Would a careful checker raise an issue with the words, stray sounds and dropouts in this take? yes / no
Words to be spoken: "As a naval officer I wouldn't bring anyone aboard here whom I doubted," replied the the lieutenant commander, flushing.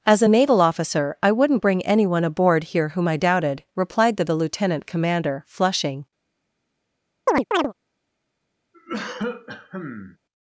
yes